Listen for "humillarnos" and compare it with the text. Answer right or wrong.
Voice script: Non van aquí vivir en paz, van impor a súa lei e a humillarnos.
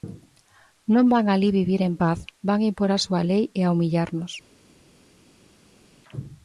right